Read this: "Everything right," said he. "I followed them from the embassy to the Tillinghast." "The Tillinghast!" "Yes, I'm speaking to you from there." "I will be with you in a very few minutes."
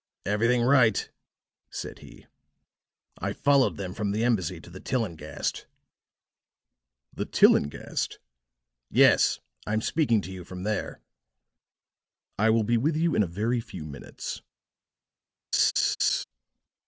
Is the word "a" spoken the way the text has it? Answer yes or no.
yes